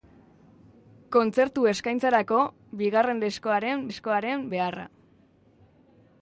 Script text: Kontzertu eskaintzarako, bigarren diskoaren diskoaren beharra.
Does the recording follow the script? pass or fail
pass